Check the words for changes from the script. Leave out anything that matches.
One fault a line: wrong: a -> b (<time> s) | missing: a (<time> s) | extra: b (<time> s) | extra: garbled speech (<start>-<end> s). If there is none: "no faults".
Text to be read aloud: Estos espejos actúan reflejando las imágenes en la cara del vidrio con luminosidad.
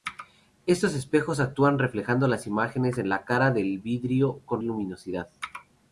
no faults